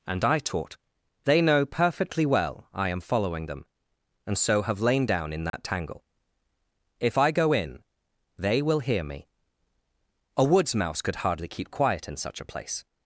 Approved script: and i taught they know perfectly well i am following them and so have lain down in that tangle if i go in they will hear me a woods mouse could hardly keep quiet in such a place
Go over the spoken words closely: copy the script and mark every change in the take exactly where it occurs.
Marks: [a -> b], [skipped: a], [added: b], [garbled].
and i taught they know perfectly well i am following them and so have lain down in that tangle if i go in they will hear me a woods mouse could hardly keep quiet in such a place